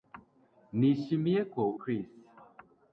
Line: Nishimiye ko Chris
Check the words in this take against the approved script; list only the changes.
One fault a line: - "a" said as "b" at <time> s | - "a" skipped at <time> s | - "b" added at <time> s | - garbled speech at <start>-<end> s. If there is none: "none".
none